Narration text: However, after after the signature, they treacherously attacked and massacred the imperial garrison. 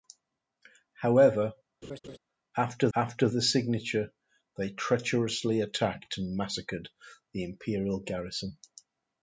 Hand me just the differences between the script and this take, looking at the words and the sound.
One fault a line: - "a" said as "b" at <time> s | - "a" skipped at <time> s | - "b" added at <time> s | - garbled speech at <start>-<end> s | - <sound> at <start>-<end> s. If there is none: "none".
- laugh at 1.8-2.2 s